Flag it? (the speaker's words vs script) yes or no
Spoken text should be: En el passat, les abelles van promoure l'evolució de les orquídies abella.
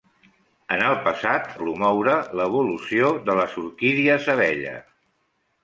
yes